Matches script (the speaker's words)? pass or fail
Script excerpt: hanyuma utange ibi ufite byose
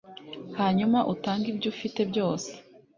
fail